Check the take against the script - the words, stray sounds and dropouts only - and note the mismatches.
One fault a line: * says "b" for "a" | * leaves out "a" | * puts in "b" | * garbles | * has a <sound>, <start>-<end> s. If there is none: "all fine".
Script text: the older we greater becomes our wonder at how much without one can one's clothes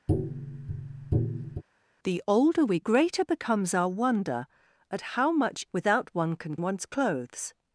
* has a tap, 0.1-1.6 s